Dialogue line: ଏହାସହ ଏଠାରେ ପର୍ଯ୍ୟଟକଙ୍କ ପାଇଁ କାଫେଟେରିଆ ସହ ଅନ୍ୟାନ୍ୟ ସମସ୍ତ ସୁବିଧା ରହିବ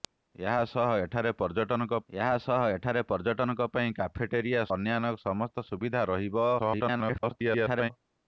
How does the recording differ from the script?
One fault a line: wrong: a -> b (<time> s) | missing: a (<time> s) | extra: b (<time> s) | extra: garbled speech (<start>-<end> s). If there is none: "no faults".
extra: ଏହାସହ ଏଠାରେ ପର୍ଯ୍ୟଟକଙ୍କ (2.1 s)
missing: ସହ (4.6 s)
extra: garbled speech (6.6-7.9 s)